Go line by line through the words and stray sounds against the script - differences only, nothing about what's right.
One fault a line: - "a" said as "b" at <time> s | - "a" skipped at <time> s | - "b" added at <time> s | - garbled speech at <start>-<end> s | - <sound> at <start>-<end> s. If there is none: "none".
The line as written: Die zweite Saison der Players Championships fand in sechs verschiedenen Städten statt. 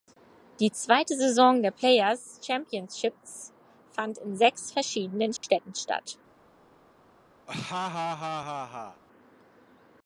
- dropout at 5.4-5.4 s
- laugh at 7.5-9.0 s